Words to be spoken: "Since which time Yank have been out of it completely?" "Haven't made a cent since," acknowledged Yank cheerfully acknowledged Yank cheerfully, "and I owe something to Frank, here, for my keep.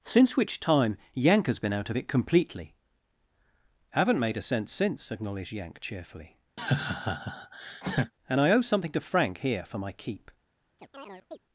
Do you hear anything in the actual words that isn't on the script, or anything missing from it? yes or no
yes